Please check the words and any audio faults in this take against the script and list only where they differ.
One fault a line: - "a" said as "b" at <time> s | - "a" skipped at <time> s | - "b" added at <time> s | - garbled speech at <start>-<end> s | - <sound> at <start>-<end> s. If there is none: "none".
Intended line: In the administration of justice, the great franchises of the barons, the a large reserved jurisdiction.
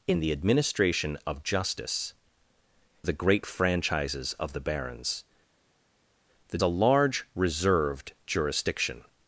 none